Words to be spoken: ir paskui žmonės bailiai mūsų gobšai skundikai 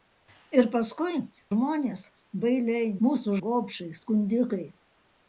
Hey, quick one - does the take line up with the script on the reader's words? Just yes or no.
yes